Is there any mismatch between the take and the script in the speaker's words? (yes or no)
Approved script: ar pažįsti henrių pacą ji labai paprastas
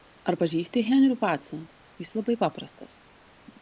yes